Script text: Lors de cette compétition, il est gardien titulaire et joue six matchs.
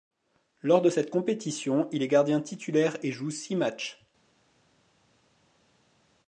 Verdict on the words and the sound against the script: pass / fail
pass